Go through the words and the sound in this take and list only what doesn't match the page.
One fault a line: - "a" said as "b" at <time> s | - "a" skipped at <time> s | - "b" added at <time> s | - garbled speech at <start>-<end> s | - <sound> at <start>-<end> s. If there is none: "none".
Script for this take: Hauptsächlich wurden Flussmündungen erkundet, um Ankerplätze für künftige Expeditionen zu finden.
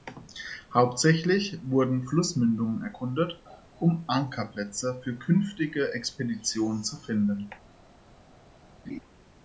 - laugh at 8.8-9.0 s